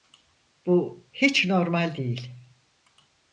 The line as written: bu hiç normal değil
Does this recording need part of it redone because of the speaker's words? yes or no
no